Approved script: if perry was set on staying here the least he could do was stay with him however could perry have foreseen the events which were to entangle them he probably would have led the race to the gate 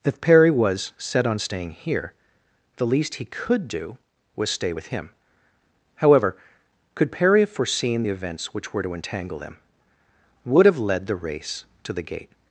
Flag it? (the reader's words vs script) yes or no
yes